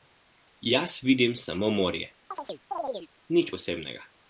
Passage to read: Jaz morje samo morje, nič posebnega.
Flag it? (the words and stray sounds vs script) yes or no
yes